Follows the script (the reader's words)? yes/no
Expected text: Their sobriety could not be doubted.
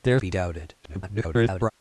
no